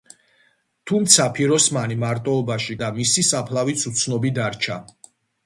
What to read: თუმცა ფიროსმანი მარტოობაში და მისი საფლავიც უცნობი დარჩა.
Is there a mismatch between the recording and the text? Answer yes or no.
no